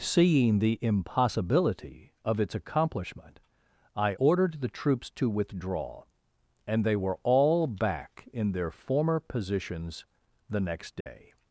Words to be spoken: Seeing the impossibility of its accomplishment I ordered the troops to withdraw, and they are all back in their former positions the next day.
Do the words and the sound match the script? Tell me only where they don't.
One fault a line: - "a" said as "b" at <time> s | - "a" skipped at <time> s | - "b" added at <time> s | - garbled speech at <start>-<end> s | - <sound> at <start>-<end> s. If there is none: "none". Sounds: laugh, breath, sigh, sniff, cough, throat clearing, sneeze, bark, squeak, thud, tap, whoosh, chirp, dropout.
- "are" said as "were" at 6.9 s
- dropout at 11.0-11.1 s